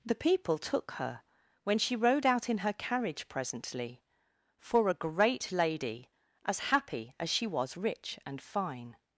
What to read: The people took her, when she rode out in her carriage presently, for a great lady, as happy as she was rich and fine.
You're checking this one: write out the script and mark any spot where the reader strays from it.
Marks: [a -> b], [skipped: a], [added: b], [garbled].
The people took her, when she rode out in her carriage presently, for a great lady, as happy as she was rich and fine.